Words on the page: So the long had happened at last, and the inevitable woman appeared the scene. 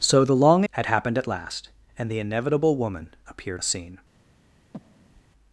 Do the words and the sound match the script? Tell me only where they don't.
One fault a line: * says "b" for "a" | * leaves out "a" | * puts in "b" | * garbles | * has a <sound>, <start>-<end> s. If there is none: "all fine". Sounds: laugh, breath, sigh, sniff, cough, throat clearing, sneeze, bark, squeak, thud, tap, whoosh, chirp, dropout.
* has a breath, 4.7-5.2 s